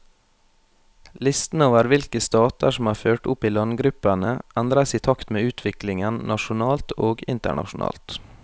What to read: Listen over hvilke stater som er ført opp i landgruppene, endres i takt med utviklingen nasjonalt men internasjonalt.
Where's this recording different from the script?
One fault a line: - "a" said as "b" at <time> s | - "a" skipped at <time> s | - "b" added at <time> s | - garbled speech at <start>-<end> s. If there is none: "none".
- "men" said as "og" at 7.1 s